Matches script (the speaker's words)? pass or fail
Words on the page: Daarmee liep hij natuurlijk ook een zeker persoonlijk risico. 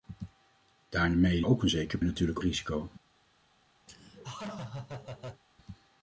fail